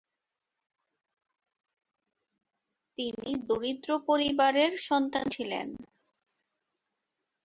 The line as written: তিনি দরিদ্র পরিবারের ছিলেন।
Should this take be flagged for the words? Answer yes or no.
yes